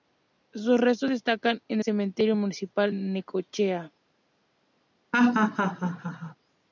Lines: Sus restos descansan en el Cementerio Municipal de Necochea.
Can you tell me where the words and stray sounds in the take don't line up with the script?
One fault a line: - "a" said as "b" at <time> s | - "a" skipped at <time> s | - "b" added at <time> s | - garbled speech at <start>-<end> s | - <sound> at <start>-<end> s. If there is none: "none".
- "el" skipped at 1.8 s
- "de" skipped at 2.9 s
- laugh at 5.1-6.4 s